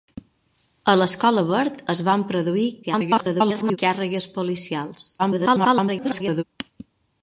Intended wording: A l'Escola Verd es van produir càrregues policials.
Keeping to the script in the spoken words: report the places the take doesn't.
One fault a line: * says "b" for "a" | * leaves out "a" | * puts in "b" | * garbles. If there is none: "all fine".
* garbles
* garbles